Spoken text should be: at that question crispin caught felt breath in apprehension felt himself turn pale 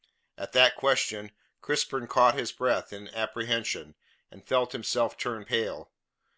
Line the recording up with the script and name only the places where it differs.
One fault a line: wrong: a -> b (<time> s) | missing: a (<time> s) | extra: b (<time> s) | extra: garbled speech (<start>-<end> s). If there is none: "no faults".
wrong: felt -> his (2.3 s)
extra: and (4.3 s)